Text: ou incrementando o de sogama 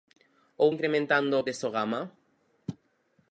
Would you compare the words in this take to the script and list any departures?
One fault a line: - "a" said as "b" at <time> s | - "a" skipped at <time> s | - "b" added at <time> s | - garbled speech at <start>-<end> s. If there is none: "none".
none